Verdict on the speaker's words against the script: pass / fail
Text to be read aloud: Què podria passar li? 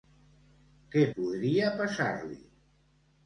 pass